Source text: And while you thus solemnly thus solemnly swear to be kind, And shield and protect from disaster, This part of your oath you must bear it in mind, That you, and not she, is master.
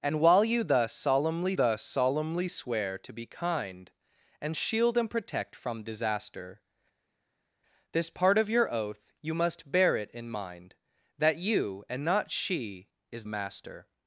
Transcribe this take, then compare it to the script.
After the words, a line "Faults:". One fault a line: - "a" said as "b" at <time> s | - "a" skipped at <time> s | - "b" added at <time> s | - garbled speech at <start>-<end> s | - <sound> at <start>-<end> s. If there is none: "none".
And while you thus solemnly thus solemnly swear to be kind, And shield and protect from disaster, This part of your oath you must bear it in mind, That you, and not she, is master.
Faults:
none